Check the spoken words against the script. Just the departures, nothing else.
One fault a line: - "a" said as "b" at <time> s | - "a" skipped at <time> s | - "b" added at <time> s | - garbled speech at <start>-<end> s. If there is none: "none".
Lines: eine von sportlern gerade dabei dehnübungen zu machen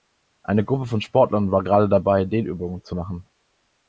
- "gruppe" added at 0.7 s
- "war" added at 1.5 s